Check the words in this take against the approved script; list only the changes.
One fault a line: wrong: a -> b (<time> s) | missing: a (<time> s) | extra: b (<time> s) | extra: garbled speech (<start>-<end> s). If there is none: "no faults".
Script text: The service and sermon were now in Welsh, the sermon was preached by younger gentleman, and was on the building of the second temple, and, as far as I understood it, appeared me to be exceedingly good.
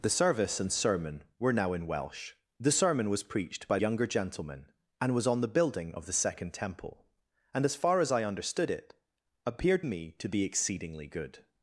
no faults